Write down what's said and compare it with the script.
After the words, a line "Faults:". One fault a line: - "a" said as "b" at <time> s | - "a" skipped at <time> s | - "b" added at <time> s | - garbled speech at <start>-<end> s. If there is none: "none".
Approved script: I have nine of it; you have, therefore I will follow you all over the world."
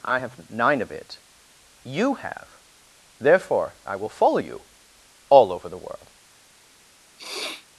I have nine of it; you have, therefore I will follow you all over the world."
Faults:
none